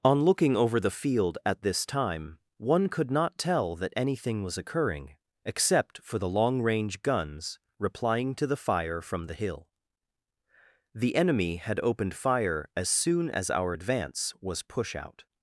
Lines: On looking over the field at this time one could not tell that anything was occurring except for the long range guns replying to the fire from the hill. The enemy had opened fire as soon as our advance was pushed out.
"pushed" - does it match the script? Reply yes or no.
no